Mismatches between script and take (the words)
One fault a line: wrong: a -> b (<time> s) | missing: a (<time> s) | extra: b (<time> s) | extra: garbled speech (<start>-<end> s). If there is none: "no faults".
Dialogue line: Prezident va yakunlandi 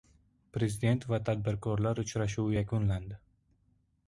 extra: tadbirkorlar uchrashuvi (1.3 s)